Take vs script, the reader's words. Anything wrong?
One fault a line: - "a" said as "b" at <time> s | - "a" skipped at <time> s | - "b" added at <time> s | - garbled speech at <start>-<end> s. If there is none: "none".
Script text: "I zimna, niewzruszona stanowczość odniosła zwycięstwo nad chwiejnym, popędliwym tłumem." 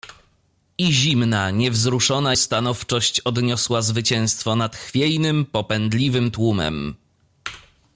none